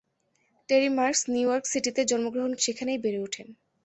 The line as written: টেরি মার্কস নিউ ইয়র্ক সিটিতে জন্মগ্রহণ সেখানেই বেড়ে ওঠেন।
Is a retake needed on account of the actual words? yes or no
no